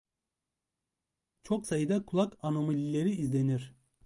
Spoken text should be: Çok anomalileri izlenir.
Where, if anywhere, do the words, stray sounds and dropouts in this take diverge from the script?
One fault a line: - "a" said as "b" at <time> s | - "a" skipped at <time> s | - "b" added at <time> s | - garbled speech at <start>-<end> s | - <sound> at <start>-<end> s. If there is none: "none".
- "sayıda kulak" added at 1.6 s